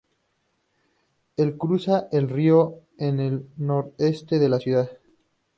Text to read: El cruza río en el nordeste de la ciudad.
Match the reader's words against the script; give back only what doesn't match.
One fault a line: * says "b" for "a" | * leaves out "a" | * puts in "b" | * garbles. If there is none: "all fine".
* puts in "el"